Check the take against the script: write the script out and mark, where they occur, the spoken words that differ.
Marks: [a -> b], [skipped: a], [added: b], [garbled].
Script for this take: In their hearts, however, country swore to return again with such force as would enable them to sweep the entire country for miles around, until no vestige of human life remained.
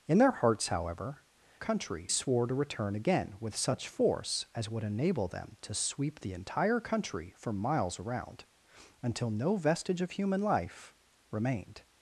In their hearts, however, country swore to return again with such force as would enable them to sweep the entire country for miles around, until no vestige of human life remained.